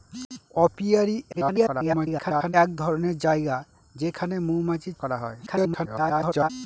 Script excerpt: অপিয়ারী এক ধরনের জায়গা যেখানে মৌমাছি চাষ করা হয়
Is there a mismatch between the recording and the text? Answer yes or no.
yes